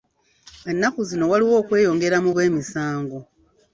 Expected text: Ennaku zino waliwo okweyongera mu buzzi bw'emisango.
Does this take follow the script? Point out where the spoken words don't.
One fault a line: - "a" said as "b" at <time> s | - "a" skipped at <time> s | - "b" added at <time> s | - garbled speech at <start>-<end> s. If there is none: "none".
- "buzzi" skipped at 2.3 s